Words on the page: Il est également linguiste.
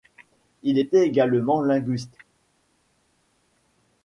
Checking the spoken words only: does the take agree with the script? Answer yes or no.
no